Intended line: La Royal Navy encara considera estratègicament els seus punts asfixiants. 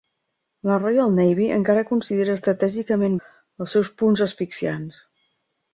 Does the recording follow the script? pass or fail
pass